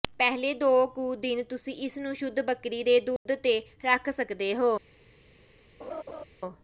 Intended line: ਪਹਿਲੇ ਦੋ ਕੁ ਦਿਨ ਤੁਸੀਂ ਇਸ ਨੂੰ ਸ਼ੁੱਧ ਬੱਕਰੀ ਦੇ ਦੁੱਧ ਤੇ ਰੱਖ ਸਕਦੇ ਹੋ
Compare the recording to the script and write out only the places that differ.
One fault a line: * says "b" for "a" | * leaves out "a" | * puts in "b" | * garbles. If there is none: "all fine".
all fine